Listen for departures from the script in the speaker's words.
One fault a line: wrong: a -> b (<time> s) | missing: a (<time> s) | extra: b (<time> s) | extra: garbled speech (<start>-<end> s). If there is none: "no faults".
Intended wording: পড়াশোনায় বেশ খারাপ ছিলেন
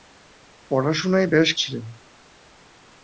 missing: খারাপ (1.5 s)